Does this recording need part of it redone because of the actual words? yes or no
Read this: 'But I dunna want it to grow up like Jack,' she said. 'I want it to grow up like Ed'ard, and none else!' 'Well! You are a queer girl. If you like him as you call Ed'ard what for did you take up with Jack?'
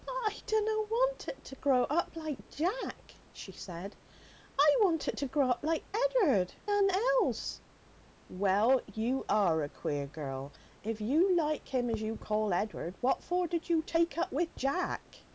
yes